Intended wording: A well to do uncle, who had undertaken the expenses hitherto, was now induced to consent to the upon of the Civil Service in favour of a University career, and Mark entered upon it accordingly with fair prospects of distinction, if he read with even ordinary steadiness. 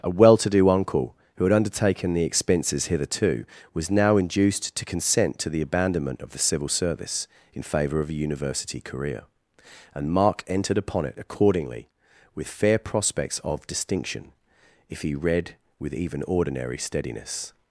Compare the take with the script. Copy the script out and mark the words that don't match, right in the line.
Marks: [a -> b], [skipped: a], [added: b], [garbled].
A well to do uncle, who had undertaken the expenses hitherto, was now induced to consent to the [upon -> abandonment] of the Civil Service in favour of a University career, and Mark entered upon it accordingly with fair prospects of distinction, if he read with even ordinary steadiness.